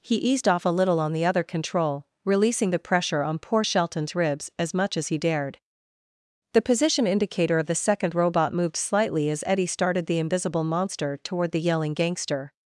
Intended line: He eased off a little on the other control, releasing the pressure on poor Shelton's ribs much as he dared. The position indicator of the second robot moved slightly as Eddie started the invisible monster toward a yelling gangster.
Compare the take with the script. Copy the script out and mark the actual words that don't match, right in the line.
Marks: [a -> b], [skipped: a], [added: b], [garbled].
He eased off a little on the other control, releasing the pressure on poor Shelton's ribs [added: as] much as he dared. The position indicator of the second robot moved slightly as Eddie started the invisible monster toward [a -> the] yelling gangster.